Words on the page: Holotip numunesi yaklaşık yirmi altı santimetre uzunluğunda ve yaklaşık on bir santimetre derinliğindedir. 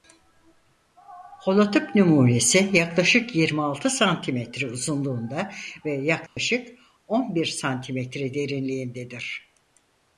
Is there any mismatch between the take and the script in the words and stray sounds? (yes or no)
yes